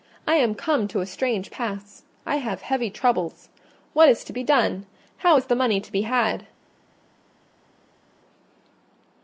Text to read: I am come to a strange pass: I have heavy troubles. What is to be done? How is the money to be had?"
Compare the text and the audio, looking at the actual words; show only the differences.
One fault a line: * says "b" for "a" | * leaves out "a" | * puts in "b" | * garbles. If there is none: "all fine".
all fine